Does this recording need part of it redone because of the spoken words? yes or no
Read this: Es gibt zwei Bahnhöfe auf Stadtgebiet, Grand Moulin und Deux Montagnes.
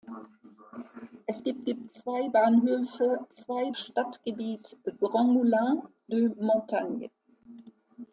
yes